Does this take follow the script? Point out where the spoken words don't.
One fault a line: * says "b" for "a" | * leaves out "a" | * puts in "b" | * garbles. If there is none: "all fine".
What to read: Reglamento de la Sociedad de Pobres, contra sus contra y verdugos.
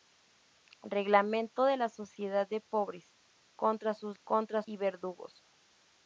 all fine